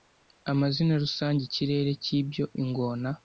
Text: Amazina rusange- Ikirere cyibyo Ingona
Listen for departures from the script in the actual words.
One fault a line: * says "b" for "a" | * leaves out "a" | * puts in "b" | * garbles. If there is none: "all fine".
all fine